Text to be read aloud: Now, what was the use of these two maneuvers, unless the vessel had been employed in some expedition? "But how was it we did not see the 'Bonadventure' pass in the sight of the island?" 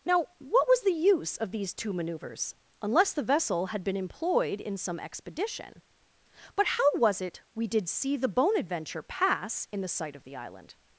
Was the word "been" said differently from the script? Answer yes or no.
no